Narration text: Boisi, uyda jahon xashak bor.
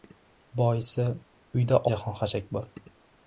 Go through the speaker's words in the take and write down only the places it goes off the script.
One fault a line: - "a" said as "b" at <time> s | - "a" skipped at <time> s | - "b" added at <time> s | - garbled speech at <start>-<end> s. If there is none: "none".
none